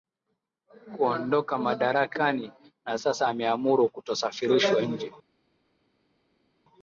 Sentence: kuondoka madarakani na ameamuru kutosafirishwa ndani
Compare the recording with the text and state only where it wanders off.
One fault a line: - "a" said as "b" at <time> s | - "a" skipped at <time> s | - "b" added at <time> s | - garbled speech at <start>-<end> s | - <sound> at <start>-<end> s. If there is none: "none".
- "sasa" added at 3.0 s
- "ndani" said as "nje" at 4.8 s